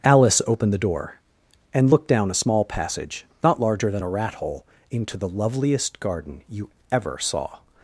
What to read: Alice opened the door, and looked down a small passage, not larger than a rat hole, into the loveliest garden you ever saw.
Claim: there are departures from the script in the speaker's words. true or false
false